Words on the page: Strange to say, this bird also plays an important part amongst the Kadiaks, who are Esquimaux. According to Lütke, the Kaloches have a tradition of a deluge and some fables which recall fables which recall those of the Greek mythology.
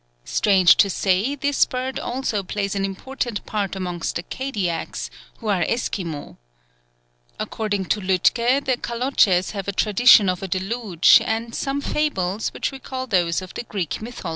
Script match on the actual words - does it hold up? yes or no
no